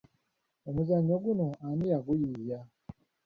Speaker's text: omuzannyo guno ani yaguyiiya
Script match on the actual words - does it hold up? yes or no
yes